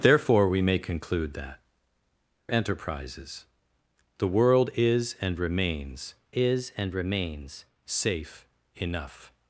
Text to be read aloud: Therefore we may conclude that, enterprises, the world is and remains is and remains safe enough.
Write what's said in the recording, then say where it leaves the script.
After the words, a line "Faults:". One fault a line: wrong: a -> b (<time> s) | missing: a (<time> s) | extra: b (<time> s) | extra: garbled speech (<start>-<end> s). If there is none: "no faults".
Therefore we may conclude that, enterprises, the world is and remains is and remains safe enough.
Faults:
no faults